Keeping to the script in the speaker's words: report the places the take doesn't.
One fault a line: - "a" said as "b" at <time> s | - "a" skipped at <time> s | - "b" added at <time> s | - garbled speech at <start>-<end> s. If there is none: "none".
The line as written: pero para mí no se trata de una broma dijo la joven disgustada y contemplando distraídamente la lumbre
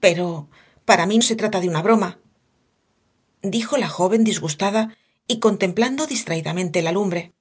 - "no" skipped at 1.2 s